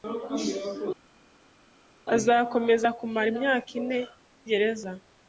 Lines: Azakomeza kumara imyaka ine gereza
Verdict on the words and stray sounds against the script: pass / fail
pass